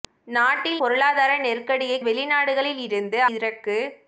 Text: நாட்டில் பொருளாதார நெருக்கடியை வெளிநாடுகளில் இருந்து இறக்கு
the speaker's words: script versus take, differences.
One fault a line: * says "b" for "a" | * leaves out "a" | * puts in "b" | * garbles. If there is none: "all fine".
all fine